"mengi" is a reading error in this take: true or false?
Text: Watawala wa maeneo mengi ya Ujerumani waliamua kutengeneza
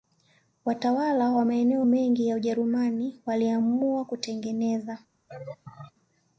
false